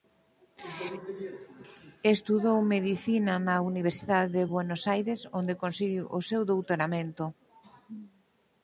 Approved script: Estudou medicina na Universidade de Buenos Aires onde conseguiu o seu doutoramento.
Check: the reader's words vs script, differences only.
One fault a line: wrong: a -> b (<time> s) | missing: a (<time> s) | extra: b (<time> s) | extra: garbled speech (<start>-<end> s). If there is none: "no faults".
no faults